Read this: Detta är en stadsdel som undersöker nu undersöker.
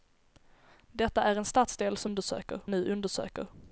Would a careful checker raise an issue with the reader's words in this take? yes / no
no